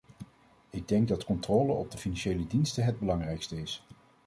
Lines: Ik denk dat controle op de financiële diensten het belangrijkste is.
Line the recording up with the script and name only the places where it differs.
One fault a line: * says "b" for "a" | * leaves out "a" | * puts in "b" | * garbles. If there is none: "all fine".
all fine